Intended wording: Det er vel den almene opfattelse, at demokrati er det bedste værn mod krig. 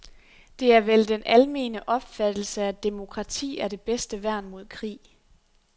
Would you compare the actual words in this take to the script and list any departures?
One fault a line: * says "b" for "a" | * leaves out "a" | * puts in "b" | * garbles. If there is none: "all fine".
all fine